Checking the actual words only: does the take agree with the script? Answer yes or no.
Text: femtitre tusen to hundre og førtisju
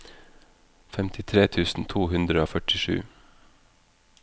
yes